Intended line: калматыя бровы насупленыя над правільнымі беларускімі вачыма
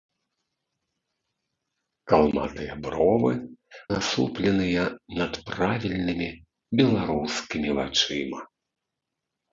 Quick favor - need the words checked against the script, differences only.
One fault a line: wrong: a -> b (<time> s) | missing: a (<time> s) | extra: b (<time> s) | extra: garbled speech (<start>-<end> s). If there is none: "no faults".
no faults